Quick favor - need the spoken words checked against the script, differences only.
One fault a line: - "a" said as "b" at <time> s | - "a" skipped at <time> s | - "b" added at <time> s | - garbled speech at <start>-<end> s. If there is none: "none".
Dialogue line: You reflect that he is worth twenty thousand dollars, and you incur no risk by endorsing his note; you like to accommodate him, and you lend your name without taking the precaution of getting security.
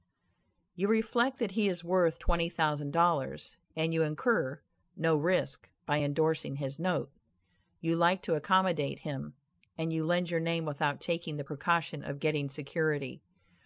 none